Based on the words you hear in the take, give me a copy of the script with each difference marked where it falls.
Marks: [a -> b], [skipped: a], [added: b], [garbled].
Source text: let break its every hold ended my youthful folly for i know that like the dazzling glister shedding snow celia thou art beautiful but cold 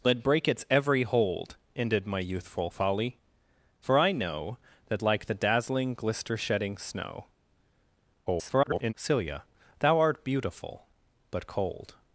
let break its every hold ended my youthful folly for i know that like the dazzling glister shedding snow [garbled] celia thou art beautiful but cold